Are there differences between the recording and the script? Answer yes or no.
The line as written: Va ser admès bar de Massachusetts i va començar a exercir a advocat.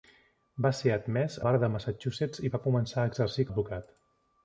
no